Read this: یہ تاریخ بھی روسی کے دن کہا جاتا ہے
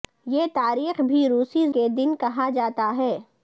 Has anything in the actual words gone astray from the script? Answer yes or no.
no